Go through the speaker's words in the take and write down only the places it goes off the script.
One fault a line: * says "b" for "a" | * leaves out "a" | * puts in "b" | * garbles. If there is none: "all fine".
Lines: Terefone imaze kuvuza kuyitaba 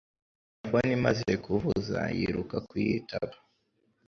* puts in "yiruka"